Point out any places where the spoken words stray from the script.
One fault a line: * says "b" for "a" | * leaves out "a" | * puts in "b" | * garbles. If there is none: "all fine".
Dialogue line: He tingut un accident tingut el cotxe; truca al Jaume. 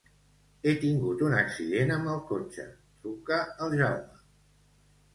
* says "amb" for "tingut"